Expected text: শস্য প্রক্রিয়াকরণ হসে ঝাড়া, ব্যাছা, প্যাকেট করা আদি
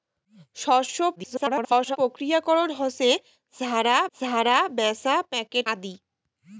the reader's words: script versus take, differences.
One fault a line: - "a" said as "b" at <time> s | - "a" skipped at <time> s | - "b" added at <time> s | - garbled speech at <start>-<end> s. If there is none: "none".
- garbled speech at 1.2-2.0 s
- "ঝাড়া" added at 4.1 s
- "করা" skipped at 5.7 s